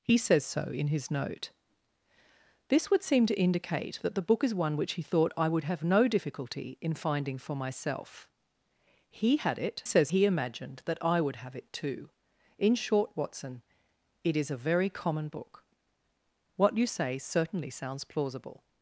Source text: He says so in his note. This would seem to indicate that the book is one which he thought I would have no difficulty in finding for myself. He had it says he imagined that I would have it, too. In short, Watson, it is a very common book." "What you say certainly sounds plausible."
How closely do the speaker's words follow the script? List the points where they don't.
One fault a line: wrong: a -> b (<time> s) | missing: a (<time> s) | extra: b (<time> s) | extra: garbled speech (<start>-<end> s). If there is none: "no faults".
no faults